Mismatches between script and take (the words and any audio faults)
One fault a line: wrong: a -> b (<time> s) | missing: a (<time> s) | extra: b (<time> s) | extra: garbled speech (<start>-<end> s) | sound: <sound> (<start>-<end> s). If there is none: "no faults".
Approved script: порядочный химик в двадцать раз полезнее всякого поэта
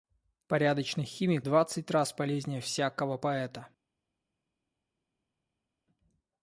missing: в (1.5 s)